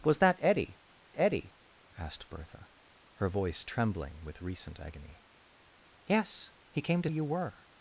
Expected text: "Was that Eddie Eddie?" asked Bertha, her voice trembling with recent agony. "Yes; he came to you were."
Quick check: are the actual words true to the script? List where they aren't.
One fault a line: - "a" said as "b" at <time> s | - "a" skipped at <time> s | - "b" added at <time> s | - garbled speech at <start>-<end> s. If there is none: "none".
none